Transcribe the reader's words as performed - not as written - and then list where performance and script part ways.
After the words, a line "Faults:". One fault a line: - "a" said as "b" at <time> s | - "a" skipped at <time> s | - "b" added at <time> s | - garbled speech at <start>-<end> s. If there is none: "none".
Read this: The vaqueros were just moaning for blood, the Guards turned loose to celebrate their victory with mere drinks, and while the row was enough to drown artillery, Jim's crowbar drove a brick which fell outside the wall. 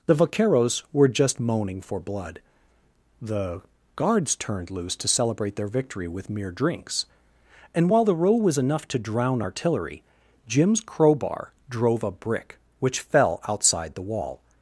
The vaqueros were just moaning for blood, the Guards turned loose to celebrate their victory with mere drinks, and while the row was enough to drown artillery, Jim's crowbar drove a brick which fell outside the wall.
Faults:
none